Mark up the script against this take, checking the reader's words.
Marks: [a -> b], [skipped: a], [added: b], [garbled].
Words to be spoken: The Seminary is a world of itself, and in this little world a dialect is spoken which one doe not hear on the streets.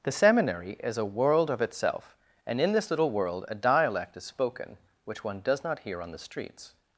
The Seminary is a world of itself, and in this little world a dialect is spoken which one [doe -> does] not hear on the streets.